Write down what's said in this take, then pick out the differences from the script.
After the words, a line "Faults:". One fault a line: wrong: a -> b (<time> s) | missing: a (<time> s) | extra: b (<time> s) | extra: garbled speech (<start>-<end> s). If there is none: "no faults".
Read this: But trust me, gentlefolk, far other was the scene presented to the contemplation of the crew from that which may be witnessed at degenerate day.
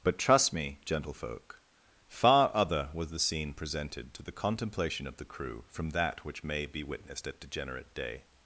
But trust me, gentlefolk, far other was the scene presented to the contemplation of the crew from that which may be witnessed at degenerate day.
Faults:
no faults